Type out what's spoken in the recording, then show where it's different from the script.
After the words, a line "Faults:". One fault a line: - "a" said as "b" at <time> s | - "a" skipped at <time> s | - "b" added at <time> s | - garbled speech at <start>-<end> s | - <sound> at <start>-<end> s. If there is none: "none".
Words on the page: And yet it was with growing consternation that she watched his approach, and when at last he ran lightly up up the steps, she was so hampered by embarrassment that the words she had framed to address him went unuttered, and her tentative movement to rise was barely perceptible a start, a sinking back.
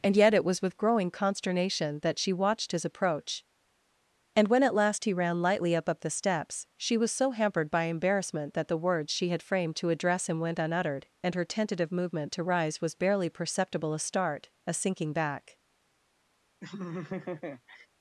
And yet it was with growing consternation that she watched his approach, and when at last he ran lightly up up the steps, she was so hampered by embarrassment that the words she had framed to address him went unuttered, and her tentative movement to rise was barely perceptible a start, a sinking back.
Faults:
- laugh at 16.6-17.9 s